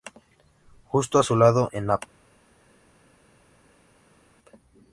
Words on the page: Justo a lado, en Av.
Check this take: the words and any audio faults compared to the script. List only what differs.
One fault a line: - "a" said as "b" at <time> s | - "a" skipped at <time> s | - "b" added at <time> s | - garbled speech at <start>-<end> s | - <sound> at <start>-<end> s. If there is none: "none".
- "su" added at 1.2 s